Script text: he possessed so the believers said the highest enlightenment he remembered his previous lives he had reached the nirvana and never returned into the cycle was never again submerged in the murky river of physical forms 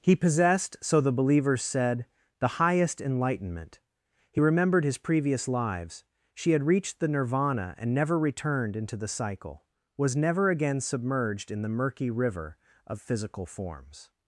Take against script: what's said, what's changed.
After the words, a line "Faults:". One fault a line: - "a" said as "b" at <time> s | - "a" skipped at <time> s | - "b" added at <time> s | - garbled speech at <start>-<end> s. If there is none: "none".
he possessed so the believers said the highest enlightenment he remembered his previous lives she had reached the nirvana and never returned into the cycle was never again submerged in the murky river of physical forms
Faults:
- "he" said as "she" at 6.3 s